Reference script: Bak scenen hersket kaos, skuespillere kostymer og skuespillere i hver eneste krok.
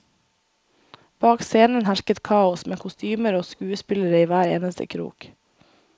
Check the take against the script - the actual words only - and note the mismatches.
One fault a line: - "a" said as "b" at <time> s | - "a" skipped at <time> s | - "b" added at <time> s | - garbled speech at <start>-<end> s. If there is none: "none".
- "skuespillere" said as "med" at 2.7 s